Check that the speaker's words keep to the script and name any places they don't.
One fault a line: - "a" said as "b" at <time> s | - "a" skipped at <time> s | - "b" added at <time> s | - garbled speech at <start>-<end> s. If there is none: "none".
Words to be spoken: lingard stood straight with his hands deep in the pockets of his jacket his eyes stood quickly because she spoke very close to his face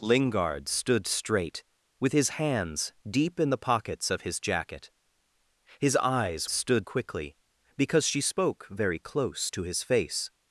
none